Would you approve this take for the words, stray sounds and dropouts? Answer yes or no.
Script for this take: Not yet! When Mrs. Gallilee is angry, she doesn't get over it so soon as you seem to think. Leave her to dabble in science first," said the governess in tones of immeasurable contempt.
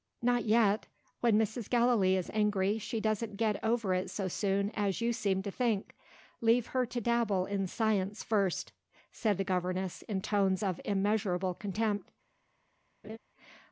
no